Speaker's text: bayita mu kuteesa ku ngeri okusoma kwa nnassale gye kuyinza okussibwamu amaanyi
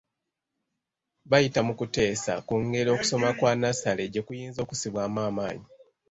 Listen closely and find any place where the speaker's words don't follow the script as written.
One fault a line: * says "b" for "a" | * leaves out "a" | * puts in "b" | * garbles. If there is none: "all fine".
all fine